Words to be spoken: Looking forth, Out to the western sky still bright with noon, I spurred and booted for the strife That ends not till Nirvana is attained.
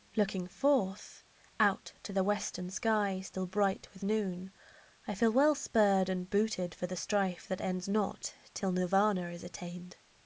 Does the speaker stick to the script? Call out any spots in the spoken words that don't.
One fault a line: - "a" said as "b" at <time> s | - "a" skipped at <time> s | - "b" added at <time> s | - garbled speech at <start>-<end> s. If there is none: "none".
- "feel well" added at 5.1 s